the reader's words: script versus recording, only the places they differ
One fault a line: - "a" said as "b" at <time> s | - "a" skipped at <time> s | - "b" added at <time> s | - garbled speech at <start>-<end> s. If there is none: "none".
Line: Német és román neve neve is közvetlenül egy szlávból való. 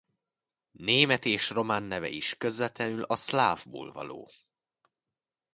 - "neve" skipped at 2.1 s
- "egy" said as "a" at 3.0 s